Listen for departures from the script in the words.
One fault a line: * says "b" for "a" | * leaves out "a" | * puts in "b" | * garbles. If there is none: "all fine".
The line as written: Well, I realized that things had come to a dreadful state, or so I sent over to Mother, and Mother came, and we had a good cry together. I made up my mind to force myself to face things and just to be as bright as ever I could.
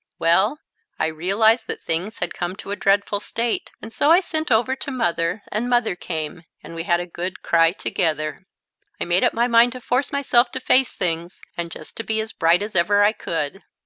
* says "and" for "or"